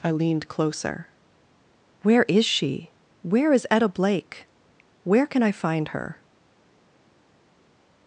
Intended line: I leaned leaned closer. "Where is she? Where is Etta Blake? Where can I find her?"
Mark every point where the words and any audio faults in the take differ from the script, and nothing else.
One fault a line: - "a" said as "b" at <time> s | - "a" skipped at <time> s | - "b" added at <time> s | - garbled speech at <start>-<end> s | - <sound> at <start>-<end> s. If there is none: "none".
- "leaned" skipped at 0.5 s